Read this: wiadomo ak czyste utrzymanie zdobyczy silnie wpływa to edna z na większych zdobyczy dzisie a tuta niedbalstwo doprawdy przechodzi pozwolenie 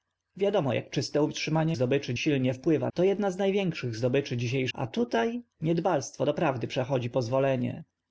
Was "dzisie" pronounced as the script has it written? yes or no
yes